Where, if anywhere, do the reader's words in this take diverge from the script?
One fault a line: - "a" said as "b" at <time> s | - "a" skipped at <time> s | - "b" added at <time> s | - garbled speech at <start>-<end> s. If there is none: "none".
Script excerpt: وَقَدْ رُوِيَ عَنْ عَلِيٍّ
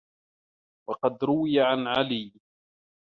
none